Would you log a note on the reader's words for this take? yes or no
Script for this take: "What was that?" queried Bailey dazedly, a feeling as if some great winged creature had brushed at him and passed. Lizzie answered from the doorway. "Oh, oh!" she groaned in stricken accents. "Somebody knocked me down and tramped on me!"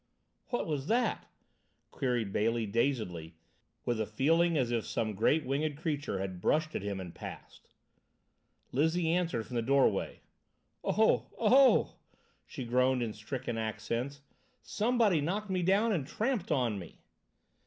yes